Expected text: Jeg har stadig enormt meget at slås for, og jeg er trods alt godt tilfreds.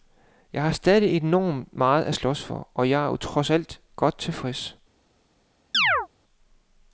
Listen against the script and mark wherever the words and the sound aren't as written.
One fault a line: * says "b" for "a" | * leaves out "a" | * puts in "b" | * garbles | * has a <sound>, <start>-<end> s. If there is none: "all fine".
* has a chirp, 5.7-6.1 s